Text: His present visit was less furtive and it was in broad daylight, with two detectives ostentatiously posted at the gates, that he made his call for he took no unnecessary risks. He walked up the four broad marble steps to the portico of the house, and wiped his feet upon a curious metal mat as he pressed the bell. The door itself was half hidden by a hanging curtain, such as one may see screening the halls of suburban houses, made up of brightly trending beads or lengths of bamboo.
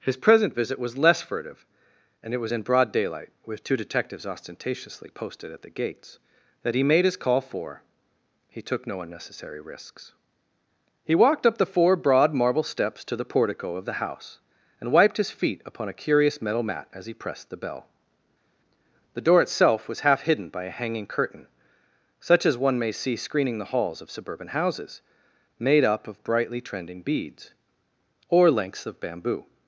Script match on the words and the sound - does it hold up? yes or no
yes